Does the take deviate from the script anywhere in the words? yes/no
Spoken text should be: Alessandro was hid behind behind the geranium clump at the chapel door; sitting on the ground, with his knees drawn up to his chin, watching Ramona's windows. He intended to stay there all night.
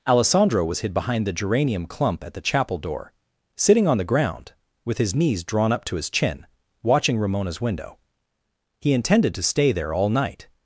yes